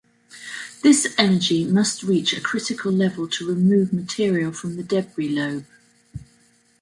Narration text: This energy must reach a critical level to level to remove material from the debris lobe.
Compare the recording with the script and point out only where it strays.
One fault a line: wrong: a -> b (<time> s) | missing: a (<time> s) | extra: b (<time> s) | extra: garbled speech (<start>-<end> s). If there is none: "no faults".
missing: level to (3.5 s)